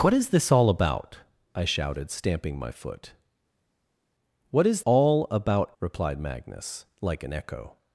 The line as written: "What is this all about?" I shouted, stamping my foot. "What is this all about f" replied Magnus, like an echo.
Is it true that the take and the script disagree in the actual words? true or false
true